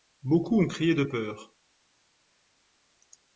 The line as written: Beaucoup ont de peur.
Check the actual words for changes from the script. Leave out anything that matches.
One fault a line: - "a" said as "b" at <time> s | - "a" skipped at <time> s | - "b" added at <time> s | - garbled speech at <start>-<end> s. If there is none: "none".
- "crié" added at 0.6 s